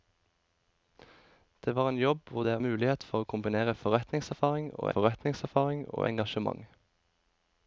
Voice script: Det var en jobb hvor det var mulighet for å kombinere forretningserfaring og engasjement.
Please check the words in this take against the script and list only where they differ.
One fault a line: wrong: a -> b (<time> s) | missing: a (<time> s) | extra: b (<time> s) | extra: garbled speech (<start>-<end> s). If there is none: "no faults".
missing: var (2.5 s)
extra: forretningserfaring og (5.0 s)